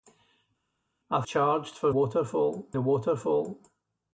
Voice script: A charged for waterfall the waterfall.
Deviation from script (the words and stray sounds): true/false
false